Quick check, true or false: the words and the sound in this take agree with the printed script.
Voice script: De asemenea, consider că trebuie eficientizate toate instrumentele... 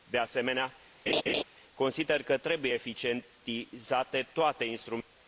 false